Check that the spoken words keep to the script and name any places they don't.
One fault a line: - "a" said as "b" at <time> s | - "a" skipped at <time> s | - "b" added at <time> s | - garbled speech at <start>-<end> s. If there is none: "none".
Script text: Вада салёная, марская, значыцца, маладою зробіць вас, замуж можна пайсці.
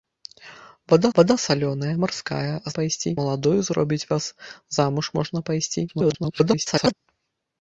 - "вада" added at 1.2 s
- "значыцца" said as "пайсці" at 2.8 s
- garbled speech at 5.9-6.9 s